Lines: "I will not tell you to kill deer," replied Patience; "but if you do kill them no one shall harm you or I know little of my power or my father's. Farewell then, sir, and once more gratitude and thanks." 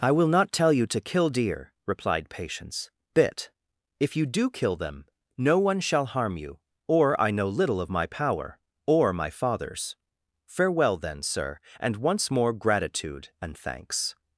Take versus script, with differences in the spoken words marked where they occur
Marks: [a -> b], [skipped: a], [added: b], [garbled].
"I will not tell you to kill deer," replied Patience; ["but -> bit] if you do kill them no one shall harm you or I know little of my power or my father's. Farewell then, sir, and once more gratitude and thanks."